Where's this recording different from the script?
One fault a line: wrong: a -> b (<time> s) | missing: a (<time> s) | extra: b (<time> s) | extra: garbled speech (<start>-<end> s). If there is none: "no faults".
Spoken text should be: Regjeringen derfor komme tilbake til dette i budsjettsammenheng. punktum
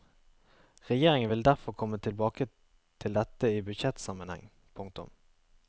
extra: vil (1.3 s)